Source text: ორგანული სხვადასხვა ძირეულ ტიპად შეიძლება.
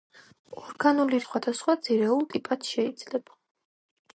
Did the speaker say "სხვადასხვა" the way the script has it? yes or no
yes